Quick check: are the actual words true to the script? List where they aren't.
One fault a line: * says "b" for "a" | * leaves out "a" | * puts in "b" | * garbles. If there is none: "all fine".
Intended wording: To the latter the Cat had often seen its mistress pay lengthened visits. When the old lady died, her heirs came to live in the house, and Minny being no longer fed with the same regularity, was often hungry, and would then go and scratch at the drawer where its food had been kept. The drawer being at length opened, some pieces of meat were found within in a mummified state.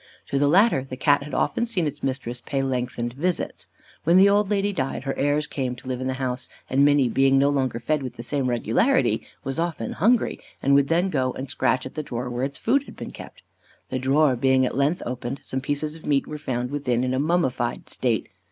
all fine